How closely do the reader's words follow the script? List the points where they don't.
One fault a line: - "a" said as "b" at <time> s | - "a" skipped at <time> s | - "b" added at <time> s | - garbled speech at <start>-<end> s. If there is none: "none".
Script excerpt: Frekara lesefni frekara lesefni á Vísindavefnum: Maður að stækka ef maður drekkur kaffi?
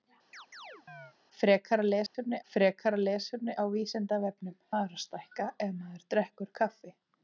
none